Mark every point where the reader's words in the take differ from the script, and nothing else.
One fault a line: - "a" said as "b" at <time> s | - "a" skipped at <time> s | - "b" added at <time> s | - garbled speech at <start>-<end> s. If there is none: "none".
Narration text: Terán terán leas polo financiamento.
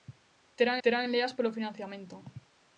none